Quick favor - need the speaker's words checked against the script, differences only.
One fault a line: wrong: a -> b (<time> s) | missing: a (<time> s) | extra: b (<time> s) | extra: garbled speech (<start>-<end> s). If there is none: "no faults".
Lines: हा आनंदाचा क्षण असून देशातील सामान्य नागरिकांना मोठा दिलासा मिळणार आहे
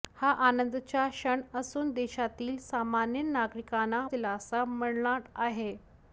missing: मोठा (4.1 s)